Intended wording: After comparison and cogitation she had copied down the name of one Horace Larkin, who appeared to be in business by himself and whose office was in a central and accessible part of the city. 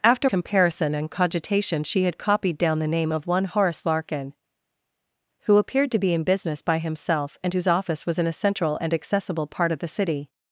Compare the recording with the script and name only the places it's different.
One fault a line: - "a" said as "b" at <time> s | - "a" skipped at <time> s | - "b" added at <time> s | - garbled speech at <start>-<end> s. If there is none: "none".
none